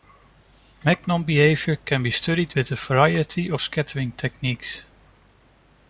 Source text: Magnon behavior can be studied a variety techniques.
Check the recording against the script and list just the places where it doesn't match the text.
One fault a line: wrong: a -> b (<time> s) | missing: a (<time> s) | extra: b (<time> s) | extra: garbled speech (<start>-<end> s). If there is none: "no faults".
extra: with (2.5 s)
extra: of scattering (3.5 s)